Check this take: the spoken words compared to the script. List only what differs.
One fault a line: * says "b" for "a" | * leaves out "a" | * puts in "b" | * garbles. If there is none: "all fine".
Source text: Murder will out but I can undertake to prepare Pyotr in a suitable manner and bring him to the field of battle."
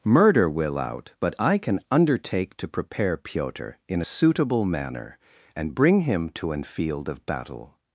* says "an" for "the"